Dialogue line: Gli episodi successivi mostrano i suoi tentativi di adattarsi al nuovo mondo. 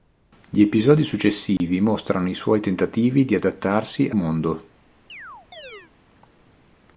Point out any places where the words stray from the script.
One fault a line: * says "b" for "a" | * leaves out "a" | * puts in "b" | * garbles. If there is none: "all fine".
* leaves out "al nuovo"